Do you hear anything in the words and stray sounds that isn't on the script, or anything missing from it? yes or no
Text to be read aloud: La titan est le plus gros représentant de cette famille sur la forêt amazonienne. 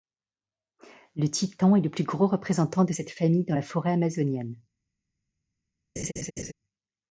yes